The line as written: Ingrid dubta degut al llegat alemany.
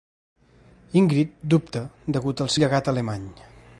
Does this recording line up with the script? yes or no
yes